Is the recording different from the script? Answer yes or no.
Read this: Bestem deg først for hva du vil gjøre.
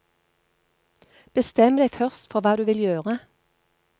no